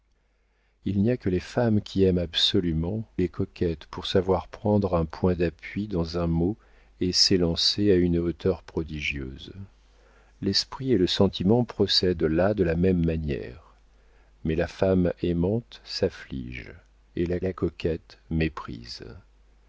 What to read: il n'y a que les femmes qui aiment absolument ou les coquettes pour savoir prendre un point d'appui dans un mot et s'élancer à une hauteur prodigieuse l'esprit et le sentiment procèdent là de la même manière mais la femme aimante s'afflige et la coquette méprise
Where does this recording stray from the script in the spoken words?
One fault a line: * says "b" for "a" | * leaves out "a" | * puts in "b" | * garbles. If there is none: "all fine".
* leaves out "ou"
* puts in "la"